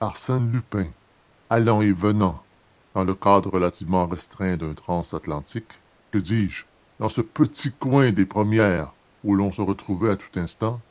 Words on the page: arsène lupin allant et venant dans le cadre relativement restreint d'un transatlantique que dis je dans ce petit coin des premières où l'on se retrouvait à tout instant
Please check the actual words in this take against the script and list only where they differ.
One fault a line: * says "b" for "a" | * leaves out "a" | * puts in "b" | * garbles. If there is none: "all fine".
all fine